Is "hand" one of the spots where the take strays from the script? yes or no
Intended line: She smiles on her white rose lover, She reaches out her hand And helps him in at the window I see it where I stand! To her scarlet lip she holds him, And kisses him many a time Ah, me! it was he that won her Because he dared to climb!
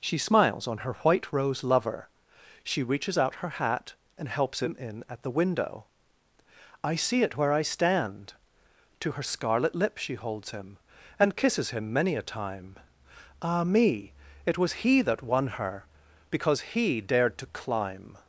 yes